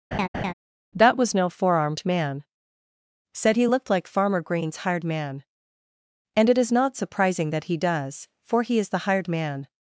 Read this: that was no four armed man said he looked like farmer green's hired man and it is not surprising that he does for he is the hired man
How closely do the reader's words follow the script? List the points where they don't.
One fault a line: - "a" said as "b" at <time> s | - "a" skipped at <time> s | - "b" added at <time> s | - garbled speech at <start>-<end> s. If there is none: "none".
none